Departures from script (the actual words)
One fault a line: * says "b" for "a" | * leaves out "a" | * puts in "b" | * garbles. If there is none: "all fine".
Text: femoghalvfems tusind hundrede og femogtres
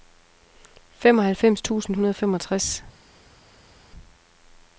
all fine